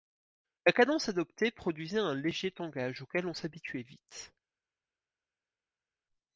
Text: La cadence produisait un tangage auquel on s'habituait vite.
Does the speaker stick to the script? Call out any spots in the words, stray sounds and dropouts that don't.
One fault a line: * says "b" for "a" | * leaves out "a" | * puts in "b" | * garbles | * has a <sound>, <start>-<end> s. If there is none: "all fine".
* puts in "adoptée"
* puts in "léger"